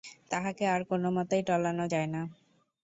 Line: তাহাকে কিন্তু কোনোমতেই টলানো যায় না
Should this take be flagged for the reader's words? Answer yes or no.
yes